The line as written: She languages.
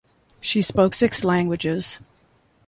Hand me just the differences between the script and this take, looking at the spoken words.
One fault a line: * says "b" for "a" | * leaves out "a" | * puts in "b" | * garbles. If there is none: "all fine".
* puts in "spoke six"